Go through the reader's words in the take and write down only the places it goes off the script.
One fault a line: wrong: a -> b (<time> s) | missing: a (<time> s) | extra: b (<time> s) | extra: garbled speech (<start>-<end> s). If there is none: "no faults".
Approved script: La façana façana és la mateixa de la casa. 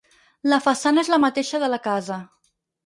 missing: façana (1.0 s)